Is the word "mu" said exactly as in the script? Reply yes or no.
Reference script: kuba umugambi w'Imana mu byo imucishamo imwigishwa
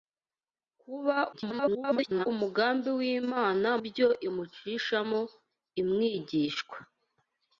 no